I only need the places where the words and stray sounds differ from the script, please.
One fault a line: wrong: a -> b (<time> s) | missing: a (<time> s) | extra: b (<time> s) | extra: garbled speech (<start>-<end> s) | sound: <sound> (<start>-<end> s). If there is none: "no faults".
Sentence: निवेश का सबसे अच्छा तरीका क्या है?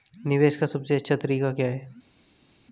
no faults